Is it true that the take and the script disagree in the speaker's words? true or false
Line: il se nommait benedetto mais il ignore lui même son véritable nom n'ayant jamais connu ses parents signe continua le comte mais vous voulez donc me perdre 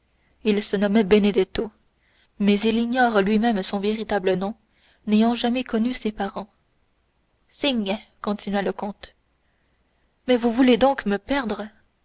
false